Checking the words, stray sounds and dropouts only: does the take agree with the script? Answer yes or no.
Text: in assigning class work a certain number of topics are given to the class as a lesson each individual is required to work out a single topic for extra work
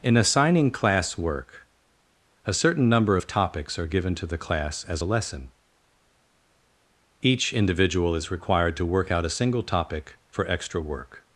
yes